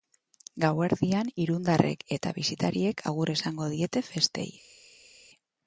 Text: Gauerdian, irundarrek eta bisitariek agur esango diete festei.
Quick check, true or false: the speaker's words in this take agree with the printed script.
true